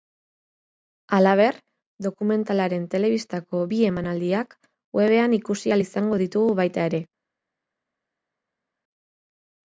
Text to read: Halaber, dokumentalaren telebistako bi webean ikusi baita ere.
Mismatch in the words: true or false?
true